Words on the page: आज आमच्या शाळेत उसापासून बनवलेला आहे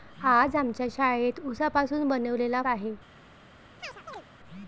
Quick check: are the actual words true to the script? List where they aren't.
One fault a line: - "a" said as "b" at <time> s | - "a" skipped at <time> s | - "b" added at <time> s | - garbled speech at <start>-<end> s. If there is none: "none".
none